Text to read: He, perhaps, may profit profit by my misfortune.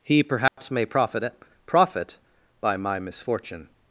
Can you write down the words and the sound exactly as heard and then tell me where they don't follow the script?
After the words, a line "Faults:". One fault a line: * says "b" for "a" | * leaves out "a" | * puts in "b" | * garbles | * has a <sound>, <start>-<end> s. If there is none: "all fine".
He, perhaps, may profit profit by my misfortune.
Faults:
* has a dropout, 0.5-0.6 s